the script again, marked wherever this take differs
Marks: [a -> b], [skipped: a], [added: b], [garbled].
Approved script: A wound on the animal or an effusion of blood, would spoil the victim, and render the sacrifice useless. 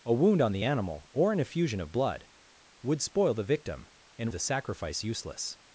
A wound on the animal or an effusion of blood, would spoil the victim, and [skipped: render] the sacrifice useless.